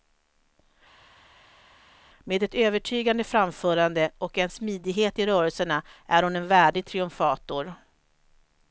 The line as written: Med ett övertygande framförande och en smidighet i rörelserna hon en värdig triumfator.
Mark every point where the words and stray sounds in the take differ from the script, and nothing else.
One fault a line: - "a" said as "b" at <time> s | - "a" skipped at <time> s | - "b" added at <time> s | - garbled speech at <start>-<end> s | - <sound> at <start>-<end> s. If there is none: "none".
- "är" added at 6.1 s